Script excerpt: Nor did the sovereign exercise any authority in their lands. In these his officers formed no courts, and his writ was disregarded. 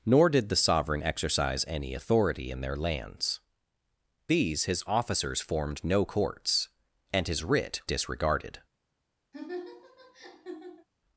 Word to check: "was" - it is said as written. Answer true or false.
false